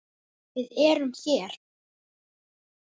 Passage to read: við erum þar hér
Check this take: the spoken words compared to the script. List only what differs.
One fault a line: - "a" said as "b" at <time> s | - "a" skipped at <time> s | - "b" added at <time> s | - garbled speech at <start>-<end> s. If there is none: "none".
- "þar" skipped at 1.1 s